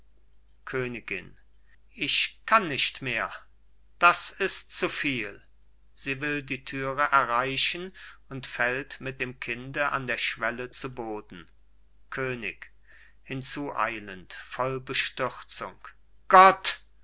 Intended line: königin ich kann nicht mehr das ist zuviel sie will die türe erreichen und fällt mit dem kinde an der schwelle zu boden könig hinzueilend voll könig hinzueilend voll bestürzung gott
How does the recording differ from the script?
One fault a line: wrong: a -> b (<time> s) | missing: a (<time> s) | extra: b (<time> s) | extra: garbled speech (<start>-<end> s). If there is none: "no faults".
missing: könig hinzueilend voll (14.8 s)